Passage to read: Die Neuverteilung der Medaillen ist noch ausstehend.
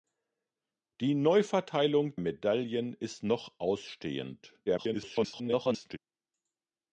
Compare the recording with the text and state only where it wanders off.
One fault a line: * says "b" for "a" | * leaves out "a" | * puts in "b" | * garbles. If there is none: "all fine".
* leaves out "der"
* garbles